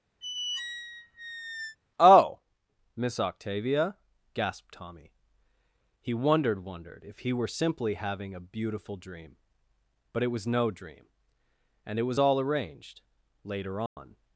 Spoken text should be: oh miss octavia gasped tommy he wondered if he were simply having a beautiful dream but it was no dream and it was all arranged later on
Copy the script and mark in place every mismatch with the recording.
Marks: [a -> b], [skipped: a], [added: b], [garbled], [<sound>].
[squeak] oh miss octavia gasped tommy he wondered [added: wondered] if he were simply having a beautiful dream but it was no dream and it was all arranged later on [dropout]